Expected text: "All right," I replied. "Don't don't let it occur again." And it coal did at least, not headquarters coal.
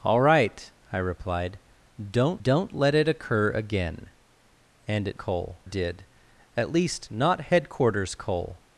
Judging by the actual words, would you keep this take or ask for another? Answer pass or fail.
pass